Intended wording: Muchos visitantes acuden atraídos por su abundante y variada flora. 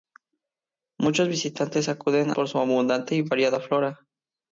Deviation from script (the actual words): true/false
true